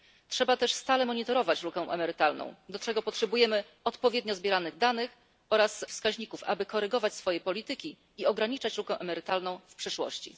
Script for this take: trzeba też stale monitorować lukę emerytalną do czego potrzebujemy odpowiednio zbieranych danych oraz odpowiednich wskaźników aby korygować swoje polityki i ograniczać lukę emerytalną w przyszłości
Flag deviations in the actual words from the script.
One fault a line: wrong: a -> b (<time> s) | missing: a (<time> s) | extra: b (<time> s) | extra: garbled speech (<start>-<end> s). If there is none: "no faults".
missing: odpowiednich (5.9 s)